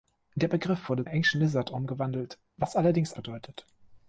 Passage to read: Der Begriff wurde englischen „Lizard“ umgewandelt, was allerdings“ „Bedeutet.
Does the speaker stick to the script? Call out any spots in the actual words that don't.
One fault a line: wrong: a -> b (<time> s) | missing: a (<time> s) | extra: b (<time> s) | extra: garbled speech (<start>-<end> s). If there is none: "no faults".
no faults